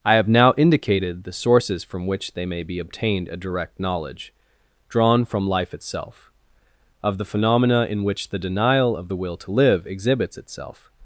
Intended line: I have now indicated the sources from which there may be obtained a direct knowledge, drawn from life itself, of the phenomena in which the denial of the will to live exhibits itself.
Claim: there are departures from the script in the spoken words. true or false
true